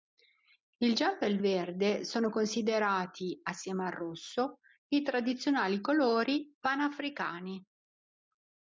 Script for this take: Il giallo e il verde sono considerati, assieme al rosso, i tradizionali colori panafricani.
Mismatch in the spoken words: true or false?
false